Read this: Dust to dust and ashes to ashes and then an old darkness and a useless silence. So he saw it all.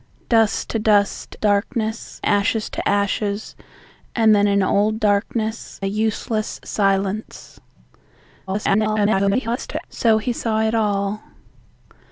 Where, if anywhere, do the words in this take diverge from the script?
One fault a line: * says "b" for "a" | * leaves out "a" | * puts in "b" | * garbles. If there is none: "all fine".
* says "darkness" for "and"
* leaves out "and"
* garbles